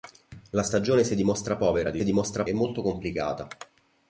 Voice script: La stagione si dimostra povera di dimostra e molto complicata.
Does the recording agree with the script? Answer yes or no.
yes